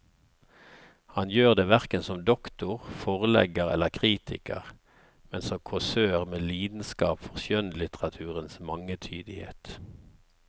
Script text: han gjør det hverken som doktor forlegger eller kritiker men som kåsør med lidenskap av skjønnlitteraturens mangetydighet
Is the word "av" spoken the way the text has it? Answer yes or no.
no